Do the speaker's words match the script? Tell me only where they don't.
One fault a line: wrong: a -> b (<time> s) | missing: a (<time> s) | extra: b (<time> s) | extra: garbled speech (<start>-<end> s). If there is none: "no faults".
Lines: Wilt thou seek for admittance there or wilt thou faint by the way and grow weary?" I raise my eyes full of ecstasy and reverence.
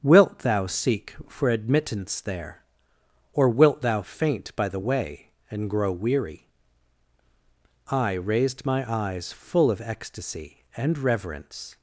wrong: raise -> raised (8.1 s)